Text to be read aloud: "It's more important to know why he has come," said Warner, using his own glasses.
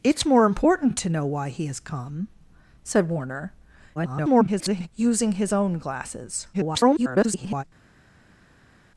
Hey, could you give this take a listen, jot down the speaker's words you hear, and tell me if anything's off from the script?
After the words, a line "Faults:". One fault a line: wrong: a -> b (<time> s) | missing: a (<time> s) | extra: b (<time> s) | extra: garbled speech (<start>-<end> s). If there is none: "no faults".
"It's more important to know why he has come," said Warner, [garbled] using his own glasses. [garbled]
Faults:
extra: garbled speech (3.9-4.9 s)
extra: garbled speech (6.5-7.6 s)